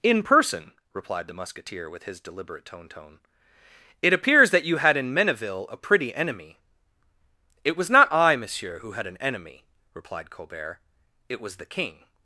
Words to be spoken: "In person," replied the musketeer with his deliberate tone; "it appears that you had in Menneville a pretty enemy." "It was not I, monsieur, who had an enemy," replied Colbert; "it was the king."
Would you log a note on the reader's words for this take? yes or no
yes